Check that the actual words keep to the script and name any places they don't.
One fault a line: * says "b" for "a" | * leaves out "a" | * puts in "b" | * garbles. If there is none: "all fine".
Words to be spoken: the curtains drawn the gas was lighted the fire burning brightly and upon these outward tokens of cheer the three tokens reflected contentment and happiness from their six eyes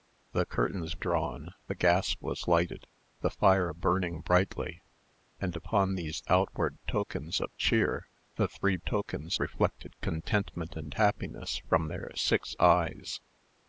all fine